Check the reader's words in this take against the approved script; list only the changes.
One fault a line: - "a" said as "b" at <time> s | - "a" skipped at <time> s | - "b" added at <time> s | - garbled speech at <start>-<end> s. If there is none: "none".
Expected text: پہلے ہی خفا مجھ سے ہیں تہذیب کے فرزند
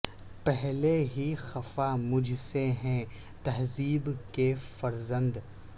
none